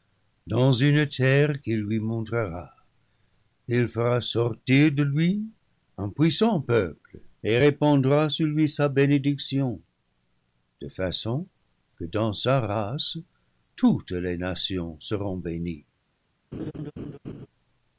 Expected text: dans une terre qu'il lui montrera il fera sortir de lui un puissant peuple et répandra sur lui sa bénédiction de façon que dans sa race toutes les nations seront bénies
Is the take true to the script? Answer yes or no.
yes